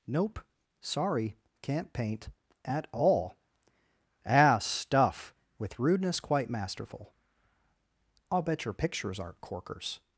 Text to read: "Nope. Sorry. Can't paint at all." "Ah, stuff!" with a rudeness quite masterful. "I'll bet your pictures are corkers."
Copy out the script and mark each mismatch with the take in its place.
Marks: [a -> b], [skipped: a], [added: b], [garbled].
"Nope. Sorry. Can't paint at all." "Ah, stuff!" with [skipped: a] rudeness quite masterful. "I'll bet your pictures [are -> aren't] corkers."